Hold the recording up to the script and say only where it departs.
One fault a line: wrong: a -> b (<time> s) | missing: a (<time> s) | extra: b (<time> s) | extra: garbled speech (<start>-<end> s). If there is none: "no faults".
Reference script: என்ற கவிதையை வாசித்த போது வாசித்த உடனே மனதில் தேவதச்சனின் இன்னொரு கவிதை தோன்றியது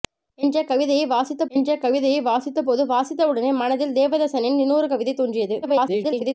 extra: என்ற கவிதையை வாசித்த (1.5 s)
extra: garbled speech (5.6-6.3 s)